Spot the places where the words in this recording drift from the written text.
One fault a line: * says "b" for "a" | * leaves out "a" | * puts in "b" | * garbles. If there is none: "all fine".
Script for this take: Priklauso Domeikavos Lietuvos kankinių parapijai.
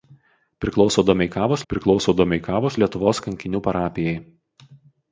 * puts in "priklauso Domeikavos"